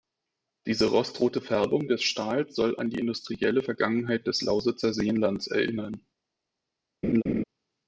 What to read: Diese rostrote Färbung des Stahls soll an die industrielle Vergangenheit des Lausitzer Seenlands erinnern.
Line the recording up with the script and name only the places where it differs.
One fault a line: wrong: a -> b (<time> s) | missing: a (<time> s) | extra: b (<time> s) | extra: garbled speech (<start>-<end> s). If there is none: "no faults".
no faults